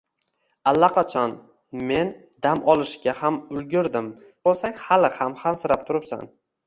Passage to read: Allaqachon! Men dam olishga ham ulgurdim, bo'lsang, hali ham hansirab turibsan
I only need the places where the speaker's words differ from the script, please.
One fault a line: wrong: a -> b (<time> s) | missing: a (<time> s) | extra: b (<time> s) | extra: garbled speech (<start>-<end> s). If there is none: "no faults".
no faults